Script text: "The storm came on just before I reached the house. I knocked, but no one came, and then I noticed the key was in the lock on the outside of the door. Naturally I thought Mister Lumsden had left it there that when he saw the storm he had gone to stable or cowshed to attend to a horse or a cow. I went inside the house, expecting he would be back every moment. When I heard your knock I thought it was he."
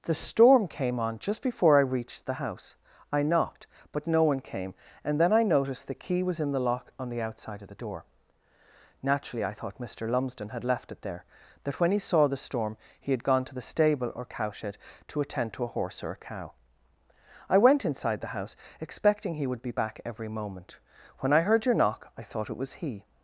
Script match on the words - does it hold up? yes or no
no